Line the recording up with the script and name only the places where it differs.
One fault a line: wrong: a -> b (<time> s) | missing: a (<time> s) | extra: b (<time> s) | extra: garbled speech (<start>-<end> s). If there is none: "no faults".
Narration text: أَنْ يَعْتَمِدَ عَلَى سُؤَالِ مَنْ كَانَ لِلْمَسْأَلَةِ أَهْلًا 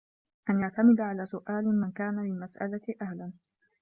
no faults